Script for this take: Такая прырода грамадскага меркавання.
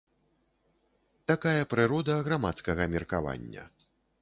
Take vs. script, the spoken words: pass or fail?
pass